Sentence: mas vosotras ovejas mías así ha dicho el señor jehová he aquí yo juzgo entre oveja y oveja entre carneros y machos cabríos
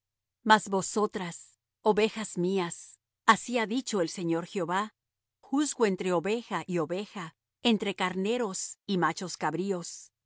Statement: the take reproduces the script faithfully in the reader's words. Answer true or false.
false